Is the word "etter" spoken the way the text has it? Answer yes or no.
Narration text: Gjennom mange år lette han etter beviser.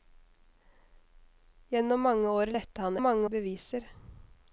no